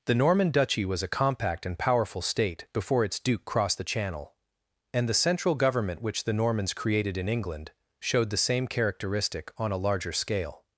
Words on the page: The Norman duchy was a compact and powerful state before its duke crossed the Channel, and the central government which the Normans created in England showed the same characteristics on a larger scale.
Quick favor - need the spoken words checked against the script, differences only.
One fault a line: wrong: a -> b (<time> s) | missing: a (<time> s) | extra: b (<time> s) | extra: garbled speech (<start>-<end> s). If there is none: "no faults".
wrong: characteristics -> characteristic (8.7 s)